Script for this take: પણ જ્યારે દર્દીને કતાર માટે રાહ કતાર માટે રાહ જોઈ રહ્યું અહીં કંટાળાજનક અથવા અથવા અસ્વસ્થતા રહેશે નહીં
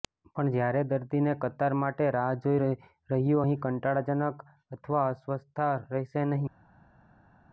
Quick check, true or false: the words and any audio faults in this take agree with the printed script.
false